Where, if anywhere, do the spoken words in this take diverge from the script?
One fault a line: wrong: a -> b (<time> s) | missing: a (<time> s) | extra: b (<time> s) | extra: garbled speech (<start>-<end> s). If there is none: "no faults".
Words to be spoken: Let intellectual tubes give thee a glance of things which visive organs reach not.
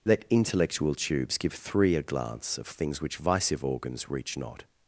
wrong: thee -> three (1.5 s)